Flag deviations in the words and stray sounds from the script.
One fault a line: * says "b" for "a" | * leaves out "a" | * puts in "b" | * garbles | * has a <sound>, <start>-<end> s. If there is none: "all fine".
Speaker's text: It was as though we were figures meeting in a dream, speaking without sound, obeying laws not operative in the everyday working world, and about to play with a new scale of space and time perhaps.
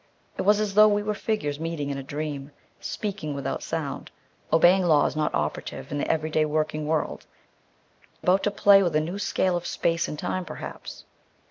* leaves out "and"